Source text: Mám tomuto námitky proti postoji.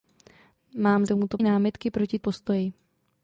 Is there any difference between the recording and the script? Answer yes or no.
no